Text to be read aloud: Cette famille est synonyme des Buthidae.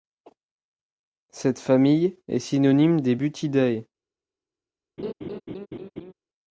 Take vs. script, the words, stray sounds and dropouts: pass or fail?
fail